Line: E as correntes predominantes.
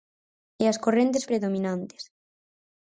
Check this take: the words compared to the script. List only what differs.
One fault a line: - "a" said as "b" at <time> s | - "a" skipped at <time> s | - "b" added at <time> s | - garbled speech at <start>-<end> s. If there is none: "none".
none